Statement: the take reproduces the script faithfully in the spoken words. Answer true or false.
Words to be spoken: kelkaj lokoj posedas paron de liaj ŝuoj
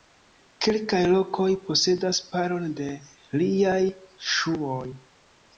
true